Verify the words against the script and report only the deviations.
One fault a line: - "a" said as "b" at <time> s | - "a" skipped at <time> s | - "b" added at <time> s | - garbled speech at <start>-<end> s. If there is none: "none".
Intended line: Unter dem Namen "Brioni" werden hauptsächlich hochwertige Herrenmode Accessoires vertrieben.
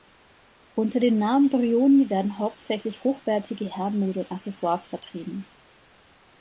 - "und" added at 4.2 s